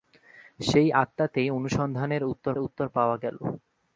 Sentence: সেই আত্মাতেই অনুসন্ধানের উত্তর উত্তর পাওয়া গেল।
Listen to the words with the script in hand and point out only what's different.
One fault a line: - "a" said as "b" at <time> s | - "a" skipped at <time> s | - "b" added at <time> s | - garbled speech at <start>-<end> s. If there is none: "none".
none